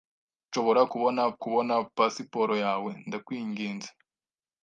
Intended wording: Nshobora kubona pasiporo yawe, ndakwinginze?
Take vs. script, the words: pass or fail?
fail